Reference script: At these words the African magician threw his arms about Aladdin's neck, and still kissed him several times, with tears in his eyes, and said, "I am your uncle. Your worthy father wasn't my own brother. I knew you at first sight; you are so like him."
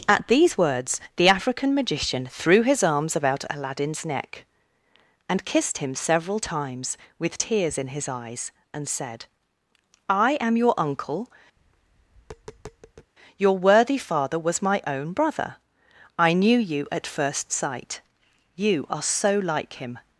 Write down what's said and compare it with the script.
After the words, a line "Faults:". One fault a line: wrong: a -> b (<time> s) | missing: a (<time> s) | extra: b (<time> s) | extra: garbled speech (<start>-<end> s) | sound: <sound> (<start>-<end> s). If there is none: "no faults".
At these words the African magician threw his arms about Aladdin's neck, and kissed him several times, with tears in his eyes, and said, "I am your uncle. Your worthy father was my own brother. I knew you at first sight; you are so like him."
Faults:
missing: still (5.5 s)
sound: tap (11.6-13.1 s)
wrong: wasn't -> was (14.4 s)